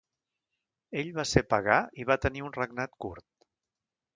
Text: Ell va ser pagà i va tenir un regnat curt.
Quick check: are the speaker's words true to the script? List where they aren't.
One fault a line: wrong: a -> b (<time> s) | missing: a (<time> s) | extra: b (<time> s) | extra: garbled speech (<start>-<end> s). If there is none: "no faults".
no faults